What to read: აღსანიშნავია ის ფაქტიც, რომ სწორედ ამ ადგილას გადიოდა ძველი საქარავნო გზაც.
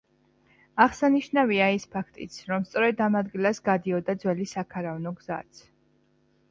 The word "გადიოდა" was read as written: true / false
true